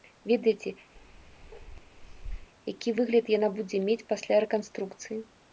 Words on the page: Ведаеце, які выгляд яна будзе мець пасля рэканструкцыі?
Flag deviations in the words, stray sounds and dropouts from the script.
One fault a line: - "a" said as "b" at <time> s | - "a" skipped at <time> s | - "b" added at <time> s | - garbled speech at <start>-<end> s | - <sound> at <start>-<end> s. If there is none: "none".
- bark at 1.0-2.5 s